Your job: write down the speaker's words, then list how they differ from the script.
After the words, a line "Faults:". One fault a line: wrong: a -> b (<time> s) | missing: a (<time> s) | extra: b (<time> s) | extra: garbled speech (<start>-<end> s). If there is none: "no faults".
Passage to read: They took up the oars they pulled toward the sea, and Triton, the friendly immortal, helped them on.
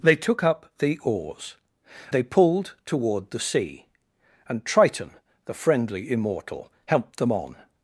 They took up the oars they pulled toward the sea, and Triton, the friendly immortal, helped them on.
Faults:
no faults